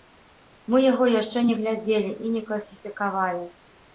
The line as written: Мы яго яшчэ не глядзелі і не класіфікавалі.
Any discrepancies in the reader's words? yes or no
no